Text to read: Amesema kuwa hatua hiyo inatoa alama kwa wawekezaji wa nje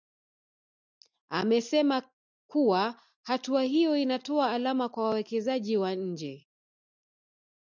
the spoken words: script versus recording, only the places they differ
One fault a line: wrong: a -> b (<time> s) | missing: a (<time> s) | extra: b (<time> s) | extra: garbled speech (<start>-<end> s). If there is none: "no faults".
no faults